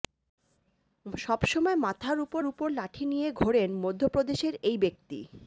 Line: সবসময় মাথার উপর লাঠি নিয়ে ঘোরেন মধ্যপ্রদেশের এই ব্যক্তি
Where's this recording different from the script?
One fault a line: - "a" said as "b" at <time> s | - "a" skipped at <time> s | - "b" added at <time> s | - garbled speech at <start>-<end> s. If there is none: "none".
- "উপর" added at 2.4 s